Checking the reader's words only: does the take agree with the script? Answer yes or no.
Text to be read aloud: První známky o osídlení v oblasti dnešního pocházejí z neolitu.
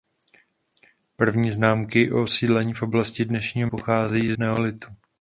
yes